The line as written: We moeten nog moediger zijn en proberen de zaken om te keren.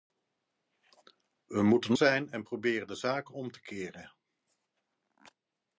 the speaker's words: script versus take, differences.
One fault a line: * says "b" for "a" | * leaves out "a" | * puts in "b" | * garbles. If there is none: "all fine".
* leaves out "nog moediger"